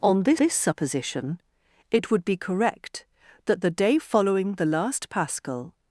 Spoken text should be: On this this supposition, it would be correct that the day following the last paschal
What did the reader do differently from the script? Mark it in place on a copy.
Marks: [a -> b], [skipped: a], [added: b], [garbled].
On this this supposition, it would be correct that the day following the last paschal